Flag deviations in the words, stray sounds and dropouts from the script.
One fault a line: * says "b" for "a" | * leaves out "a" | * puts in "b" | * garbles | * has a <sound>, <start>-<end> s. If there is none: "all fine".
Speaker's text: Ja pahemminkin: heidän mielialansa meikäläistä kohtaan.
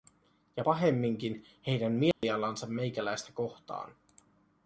* has a dropout, 2.1-2.2 s